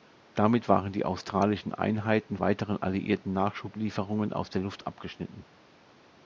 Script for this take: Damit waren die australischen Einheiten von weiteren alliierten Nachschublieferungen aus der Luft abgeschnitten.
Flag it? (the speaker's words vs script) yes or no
yes